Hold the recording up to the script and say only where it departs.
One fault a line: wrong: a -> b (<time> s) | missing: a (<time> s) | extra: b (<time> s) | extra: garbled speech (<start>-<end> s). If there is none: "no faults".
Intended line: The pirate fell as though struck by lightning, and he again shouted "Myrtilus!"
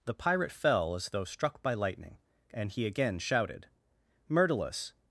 no faults